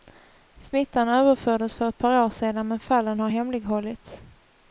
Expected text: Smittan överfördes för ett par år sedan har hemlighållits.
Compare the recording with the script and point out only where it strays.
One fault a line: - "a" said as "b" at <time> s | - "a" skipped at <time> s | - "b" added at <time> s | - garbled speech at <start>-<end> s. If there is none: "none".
- "men fallen" added at 2.7 s